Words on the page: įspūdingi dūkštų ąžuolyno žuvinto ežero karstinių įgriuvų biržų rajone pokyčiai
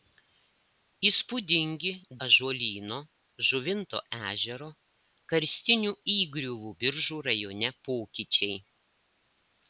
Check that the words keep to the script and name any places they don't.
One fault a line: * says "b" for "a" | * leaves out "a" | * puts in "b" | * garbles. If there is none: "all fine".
* leaves out "dūkštų"